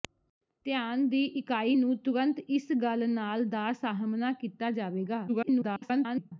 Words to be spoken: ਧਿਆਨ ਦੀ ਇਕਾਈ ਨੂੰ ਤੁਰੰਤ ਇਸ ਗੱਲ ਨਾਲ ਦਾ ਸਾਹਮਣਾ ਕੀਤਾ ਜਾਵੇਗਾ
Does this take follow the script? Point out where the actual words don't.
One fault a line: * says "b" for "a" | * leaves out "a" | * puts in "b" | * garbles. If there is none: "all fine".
* garbles